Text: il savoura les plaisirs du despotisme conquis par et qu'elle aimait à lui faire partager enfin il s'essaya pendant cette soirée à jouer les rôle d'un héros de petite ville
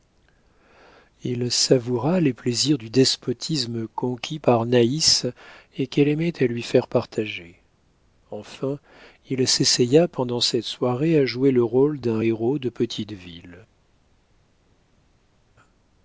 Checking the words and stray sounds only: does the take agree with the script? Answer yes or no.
no